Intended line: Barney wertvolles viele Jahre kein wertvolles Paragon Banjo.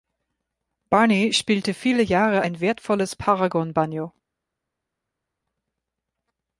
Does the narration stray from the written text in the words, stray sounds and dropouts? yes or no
yes